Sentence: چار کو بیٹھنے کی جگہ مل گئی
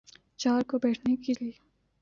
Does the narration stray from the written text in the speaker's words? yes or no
yes